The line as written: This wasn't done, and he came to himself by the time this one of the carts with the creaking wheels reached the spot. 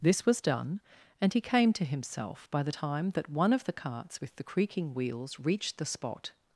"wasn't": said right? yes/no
no